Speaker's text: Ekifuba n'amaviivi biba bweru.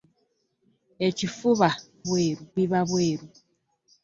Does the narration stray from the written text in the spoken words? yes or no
yes